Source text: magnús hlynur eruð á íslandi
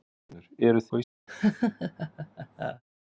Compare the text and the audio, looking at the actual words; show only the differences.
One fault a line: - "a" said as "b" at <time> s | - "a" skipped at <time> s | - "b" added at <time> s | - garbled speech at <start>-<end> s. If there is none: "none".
none